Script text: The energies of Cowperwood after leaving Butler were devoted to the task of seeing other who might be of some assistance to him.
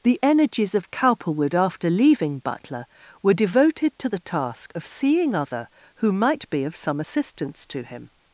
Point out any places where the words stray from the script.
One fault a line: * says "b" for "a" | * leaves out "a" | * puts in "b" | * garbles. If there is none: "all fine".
all fine